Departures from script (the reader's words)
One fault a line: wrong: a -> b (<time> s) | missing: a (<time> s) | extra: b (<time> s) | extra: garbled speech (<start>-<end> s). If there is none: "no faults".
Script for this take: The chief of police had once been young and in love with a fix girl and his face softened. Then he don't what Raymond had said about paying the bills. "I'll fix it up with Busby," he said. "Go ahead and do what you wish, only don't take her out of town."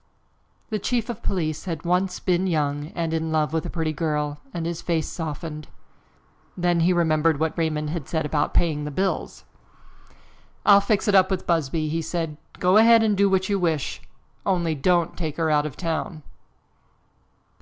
wrong: fix -> pretty (3.7 s)
wrong: don't -> remembered (6.9 s)